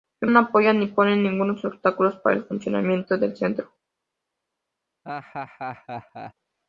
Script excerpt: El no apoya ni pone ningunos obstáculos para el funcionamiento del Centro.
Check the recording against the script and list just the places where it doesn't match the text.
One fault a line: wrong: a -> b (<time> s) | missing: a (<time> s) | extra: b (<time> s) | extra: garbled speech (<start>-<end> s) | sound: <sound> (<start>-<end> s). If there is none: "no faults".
sound: laugh (5.0-6.3 s)